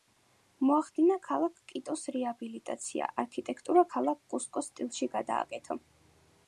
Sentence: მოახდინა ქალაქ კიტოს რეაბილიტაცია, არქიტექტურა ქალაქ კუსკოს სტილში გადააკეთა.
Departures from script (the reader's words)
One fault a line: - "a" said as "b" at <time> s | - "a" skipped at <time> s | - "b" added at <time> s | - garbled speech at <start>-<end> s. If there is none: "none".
none